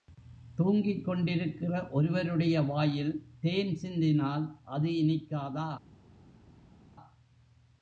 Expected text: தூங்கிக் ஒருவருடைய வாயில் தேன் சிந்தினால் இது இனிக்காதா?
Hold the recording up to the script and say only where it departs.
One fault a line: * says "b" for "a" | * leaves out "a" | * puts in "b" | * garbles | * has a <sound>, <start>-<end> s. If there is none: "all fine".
* puts in "கொண்டிருக்கிற"
* says "அது" for "இது"